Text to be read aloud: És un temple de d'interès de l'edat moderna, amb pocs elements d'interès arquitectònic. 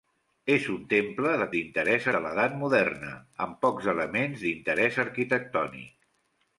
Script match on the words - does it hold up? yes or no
yes